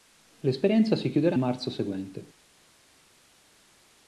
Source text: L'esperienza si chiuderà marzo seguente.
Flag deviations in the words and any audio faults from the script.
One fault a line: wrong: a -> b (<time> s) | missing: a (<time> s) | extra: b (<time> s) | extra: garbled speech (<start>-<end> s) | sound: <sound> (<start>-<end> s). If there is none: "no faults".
no faults